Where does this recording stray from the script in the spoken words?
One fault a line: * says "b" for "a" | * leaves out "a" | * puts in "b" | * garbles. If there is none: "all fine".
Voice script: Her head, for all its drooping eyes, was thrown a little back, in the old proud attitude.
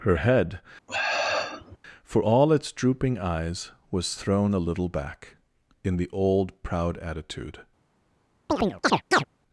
all fine